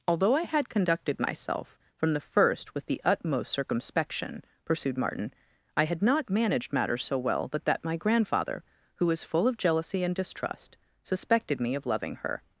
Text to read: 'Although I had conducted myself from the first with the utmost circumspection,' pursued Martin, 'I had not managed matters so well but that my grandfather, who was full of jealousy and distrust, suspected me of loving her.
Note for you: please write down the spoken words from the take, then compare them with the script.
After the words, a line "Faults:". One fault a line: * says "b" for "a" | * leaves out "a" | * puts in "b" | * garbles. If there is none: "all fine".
'Although I had conducted myself from the first with the utmost circumspection,' pursued Martin, 'I had not managed matters so well but that my grandfather, who was full of jealousy and distrust, suspected me of loving her.
Faults:
all fine